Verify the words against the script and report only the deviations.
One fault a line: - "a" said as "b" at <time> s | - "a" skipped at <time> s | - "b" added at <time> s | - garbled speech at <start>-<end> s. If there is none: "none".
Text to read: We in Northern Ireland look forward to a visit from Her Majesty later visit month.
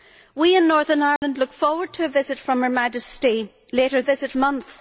none